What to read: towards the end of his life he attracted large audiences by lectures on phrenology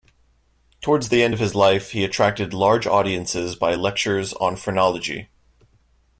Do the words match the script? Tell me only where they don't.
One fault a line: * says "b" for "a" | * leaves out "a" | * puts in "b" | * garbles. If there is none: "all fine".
all fine